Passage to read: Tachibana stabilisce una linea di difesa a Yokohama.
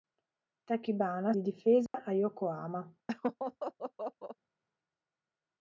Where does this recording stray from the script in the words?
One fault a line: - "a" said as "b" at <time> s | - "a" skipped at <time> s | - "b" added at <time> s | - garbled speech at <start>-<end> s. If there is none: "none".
- "stabilisce una linea" skipped at 1.3 s